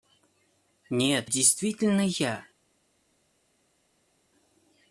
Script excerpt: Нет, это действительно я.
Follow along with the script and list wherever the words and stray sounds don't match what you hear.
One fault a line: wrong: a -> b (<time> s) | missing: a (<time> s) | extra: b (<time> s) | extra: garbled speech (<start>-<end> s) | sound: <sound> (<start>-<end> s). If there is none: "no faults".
missing: это (1.3 s)